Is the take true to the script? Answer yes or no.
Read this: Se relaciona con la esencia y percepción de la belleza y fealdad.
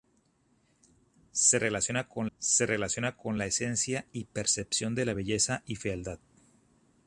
no